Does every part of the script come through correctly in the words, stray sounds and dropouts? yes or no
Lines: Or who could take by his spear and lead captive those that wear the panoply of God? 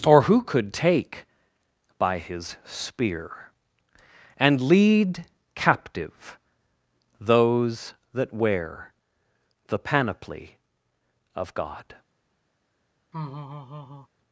no